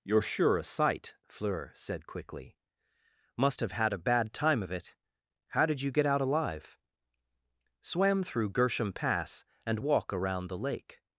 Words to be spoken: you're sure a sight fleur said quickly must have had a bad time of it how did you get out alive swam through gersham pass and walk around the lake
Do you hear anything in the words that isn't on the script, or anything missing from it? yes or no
no